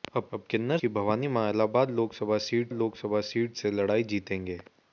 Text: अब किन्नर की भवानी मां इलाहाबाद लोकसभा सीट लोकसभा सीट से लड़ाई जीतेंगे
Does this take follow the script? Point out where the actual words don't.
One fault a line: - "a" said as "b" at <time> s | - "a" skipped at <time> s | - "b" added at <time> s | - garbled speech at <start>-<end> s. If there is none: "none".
none